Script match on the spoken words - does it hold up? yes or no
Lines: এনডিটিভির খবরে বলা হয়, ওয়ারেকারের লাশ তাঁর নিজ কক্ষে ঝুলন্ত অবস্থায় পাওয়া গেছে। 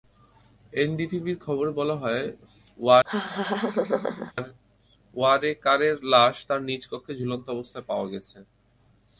yes